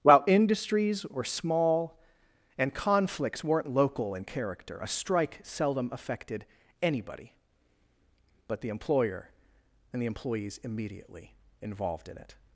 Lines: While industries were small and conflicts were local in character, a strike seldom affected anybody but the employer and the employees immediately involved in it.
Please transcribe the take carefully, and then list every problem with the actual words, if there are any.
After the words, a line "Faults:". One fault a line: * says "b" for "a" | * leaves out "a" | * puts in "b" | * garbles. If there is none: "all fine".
While industries were small and conflicts weren't local in character, a strike seldom affected anybody but the employer and the employees immediately involved in it.
Faults:
* says "weren't" for "were"